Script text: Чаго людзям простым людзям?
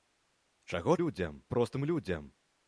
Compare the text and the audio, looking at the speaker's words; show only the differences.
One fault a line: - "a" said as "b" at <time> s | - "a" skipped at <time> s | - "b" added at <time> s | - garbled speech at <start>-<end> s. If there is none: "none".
none